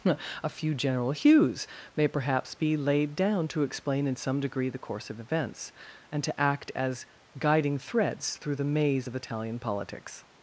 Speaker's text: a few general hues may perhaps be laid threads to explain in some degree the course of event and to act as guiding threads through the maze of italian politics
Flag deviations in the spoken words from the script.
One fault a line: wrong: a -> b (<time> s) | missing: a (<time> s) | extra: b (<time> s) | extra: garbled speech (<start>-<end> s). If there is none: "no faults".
wrong: threads -> down (3.1 s)
wrong: event -> events (5.2 s)